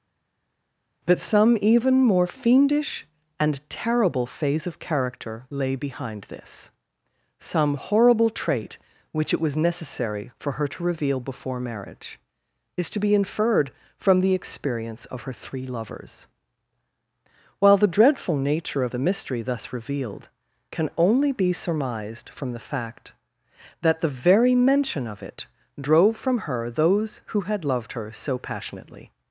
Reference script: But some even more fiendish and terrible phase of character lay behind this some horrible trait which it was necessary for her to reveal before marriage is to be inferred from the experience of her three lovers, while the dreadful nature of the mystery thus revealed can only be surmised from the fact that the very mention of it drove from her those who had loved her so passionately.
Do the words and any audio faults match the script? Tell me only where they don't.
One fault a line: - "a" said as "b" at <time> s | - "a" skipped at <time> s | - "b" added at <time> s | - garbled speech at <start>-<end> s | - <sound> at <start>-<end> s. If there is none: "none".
none